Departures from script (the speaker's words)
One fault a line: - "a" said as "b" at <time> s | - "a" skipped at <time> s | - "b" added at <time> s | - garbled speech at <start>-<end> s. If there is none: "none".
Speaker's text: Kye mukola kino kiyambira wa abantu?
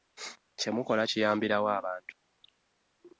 - "kino" skipped at 1.0 s